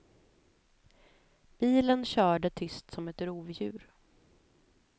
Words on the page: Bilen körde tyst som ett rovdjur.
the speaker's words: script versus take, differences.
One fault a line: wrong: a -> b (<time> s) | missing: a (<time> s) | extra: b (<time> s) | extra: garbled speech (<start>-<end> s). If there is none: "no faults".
no faults